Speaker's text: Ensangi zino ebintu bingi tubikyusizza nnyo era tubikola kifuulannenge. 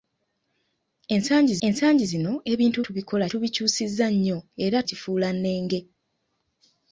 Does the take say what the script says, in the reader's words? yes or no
no